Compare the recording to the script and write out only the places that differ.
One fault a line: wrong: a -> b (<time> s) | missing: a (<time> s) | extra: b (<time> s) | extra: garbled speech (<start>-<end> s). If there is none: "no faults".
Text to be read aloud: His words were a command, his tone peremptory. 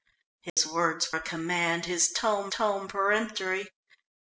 missing: were (1.1 s)
extra: tone (2.5 s)